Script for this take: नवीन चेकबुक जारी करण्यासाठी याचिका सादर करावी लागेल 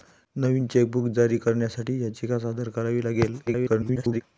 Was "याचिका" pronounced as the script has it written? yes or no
yes